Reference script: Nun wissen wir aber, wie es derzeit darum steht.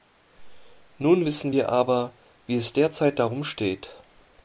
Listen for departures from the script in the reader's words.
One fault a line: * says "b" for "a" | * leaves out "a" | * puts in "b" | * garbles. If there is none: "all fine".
all fine